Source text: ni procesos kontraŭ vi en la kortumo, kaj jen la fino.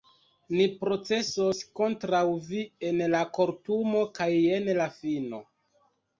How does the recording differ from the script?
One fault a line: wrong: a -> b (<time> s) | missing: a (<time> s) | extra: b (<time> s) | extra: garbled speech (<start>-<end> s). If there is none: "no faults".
no faults